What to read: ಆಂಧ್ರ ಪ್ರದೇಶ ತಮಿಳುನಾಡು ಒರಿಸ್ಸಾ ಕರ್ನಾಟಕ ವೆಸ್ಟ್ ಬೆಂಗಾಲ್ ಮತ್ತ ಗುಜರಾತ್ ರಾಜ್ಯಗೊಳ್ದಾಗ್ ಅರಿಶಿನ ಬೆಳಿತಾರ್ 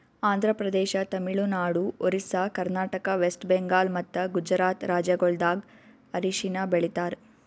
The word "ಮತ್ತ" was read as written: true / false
true